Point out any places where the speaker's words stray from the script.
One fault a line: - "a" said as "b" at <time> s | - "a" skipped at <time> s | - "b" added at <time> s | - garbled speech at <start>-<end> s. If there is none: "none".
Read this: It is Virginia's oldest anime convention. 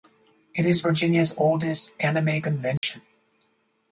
none